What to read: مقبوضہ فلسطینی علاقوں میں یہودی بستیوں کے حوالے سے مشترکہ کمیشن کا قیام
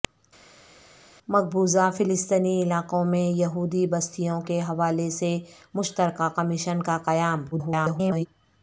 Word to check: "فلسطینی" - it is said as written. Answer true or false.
true